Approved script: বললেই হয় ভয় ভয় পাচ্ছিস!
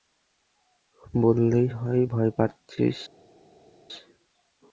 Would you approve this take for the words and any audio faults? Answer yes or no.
no